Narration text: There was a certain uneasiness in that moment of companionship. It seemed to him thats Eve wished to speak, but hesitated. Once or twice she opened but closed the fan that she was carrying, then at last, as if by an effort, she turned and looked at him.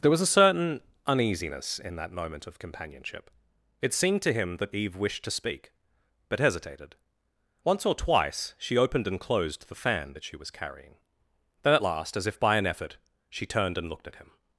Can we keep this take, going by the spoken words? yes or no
no